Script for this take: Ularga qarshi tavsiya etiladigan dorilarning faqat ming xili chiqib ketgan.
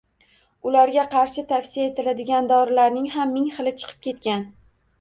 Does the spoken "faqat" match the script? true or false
false